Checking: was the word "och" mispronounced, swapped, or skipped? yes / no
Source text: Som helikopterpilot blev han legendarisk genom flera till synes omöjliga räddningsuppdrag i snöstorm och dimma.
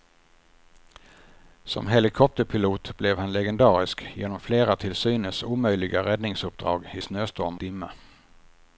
yes